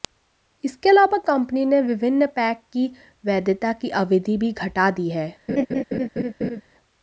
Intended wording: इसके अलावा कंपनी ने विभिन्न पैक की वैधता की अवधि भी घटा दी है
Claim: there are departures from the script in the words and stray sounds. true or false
true